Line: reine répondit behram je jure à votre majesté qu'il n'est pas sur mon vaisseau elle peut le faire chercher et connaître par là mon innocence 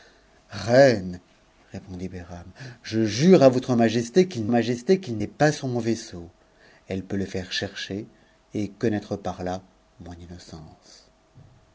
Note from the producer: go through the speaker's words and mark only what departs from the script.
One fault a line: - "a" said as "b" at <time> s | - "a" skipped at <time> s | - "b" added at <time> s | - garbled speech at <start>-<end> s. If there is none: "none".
- "majesté qu'il" added at 4.5 s